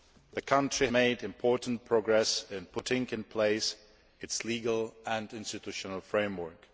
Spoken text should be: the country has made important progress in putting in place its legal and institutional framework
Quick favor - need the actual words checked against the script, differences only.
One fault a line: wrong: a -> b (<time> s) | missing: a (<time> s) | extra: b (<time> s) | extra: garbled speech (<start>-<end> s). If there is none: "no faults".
missing: has (0.9 s)